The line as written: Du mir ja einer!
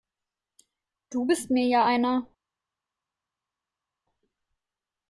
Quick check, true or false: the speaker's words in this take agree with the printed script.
false